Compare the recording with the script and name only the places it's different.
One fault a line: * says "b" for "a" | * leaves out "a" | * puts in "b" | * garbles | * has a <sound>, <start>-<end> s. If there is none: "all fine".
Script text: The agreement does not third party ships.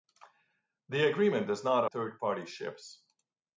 all fine